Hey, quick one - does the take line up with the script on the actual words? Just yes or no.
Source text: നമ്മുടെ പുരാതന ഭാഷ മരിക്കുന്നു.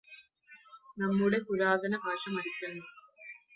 yes